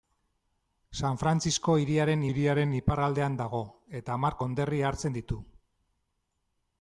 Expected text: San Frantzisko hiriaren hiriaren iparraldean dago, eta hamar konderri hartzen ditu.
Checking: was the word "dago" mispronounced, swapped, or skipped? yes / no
no